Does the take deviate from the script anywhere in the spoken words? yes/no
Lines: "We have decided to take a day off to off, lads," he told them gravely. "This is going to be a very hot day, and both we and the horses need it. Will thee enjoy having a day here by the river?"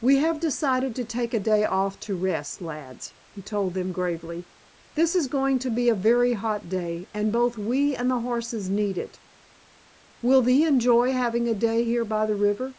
yes